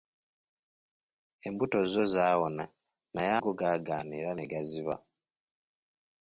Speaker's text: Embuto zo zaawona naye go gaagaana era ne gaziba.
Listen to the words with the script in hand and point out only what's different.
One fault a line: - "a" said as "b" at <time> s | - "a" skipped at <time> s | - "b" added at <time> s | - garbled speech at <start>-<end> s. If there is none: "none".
none